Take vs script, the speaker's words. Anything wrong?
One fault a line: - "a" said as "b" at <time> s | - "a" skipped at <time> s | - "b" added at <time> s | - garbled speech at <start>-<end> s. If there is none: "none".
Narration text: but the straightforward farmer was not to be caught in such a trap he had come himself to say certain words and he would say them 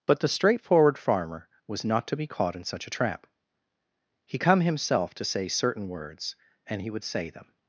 - "had" skipped at 4.4 s